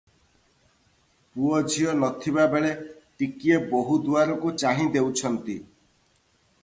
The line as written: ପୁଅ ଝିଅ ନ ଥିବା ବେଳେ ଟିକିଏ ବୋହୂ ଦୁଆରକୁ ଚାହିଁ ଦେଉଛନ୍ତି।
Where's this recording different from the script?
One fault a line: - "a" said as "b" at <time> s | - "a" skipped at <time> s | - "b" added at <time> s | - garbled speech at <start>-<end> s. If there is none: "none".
none